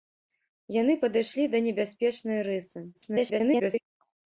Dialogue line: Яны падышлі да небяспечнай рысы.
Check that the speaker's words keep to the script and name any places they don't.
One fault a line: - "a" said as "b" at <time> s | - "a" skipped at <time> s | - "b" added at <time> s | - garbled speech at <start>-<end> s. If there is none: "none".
- garbled speech at 2.9-3.8 s